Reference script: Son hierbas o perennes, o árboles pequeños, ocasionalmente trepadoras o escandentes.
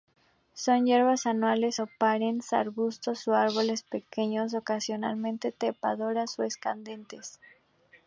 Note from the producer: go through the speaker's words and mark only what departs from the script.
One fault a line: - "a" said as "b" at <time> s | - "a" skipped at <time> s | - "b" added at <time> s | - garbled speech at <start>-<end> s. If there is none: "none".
- "anuales" added at 1.3 s
- "arbustos" added at 2.5 s